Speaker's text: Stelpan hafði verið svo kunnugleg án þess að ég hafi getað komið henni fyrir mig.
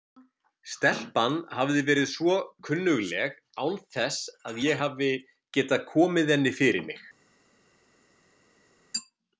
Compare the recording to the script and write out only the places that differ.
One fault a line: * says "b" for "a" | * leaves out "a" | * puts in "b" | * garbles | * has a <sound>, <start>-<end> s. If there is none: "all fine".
all fine